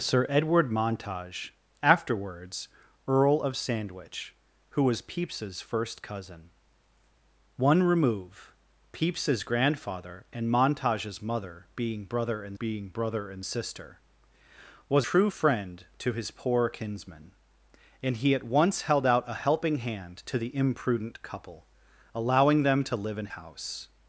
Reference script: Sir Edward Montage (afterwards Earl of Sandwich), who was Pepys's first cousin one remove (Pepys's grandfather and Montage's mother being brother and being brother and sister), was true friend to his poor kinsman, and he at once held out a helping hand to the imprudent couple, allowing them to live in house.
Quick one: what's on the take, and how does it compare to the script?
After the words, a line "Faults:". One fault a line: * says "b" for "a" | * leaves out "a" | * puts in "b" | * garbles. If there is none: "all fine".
Sir Edward Montage (afterwards Earl of Sandwich), who was Pepys's first cousin one remove (Pepys's grandfather and Montage's mother being brother and being brother and sister), was true friend to his poor kinsman, and he at once held out a helping hand to the imprudent couple, allowing them to live in house.
Faults:
all fine